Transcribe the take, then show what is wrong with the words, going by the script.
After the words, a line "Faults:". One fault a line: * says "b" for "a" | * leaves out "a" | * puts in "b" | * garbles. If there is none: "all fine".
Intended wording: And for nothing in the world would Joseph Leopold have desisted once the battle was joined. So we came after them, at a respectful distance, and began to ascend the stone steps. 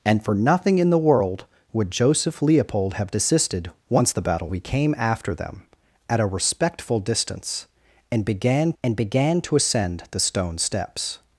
And for nothing in the world would Joseph Leopold have desisted once the battle we came after them, at a respectful distance, and began and began to ascend the stone steps.
Faults:
* leaves out "was joined So"
* puts in "and began"